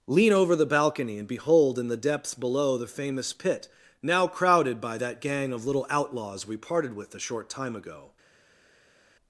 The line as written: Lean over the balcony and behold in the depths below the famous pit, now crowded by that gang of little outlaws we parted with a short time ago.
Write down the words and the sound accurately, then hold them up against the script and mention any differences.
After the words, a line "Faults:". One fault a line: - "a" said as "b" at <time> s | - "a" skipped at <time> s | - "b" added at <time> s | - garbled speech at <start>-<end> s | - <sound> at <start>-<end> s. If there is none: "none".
Lean over the balcony and behold in the depths below the famous pit, now crowded by that gang of little outlaws we parted with a short time ago.
Faults:
none